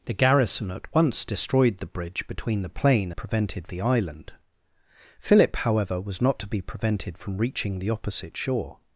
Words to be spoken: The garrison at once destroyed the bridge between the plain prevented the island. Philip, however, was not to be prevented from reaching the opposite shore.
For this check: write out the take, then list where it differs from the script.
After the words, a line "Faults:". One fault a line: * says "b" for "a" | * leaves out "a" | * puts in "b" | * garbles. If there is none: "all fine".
The garrison at once destroyed the bridge between the plain prevented the island. Philip, however, was not to be prevented from reaching the opposite shore.
Faults:
all fine